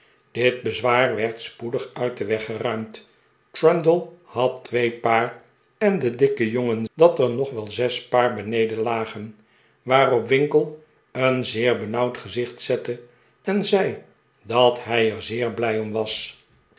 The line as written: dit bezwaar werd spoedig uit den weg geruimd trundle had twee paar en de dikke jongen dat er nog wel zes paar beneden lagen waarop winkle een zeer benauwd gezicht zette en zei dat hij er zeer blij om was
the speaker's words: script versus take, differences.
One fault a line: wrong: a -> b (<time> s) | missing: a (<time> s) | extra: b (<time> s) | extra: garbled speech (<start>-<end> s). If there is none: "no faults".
no faults